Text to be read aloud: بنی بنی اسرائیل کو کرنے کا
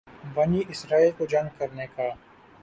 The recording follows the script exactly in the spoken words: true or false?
false